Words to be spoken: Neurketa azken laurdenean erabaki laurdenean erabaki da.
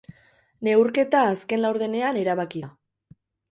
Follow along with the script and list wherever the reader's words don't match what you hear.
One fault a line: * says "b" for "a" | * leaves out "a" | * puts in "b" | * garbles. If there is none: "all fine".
* leaves out "laurdenean erabaki"